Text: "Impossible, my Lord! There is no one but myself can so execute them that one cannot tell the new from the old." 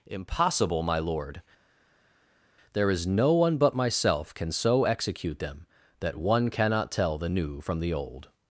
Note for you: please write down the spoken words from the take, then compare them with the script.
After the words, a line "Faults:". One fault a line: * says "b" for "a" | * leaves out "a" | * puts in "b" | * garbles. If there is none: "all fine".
"Impossible, my Lord! There is no one but myself can so execute them that one cannot tell the new from the old."
Faults:
all fine